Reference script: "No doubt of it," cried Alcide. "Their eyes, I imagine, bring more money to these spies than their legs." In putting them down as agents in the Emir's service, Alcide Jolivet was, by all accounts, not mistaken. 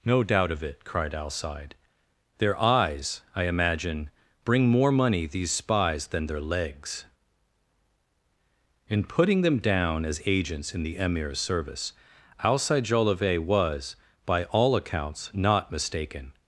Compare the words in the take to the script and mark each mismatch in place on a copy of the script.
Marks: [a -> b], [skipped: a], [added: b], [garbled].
"No doubt of it," cried Alcide. "Their eyes, I imagine, bring more money [skipped: to] these spies than their legs." In putting them down as agents in the Emir's service, Alcide Jolivet was, by all accounts, not mistaken.